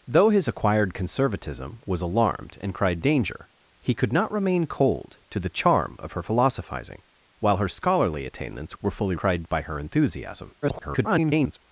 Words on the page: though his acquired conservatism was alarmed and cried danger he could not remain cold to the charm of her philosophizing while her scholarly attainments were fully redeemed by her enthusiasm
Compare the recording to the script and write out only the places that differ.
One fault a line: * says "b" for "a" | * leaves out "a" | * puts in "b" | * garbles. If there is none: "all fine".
* says "cried" for "redeemed"
* garbles